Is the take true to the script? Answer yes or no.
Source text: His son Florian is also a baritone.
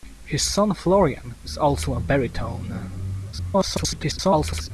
no